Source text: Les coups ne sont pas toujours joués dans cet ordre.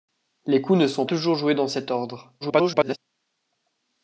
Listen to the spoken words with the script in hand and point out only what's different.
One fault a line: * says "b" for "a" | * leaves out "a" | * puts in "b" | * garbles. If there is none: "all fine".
* leaves out "pas"
* garbles